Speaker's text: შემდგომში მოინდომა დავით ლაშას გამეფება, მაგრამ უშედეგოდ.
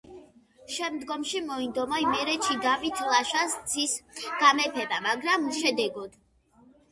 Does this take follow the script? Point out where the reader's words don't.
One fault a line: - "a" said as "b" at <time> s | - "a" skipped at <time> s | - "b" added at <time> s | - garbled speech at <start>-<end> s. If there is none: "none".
- "იმერეთში" added at 2.0 s
- "ძის" added at 3.7 s